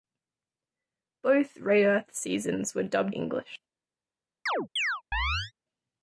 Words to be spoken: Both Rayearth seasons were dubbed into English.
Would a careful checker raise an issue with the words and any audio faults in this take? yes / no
yes